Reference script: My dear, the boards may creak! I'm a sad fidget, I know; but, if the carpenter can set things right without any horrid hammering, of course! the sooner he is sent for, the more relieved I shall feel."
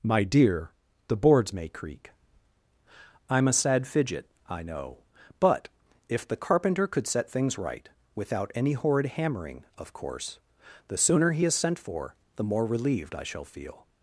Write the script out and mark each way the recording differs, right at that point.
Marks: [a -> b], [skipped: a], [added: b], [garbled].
My dear, the boards may creak! I'm a sad fidget, I know; but, if the carpenter [can -> could] set things right without any horrid hammering, of course! the sooner he is sent for, the more relieved I shall feel."